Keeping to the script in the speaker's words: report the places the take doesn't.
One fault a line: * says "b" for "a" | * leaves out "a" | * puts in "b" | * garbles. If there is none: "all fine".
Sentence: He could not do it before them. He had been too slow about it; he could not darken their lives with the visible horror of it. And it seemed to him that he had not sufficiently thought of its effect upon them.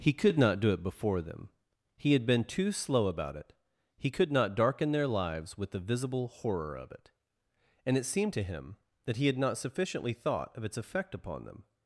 all fine